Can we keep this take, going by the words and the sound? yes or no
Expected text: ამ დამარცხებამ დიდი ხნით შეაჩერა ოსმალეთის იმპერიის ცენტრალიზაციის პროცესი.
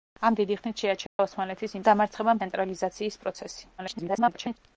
no